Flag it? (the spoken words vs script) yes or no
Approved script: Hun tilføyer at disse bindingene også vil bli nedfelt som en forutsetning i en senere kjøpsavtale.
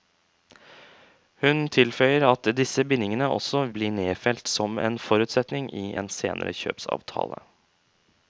yes